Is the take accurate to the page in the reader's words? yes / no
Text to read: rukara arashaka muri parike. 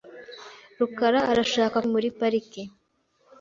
yes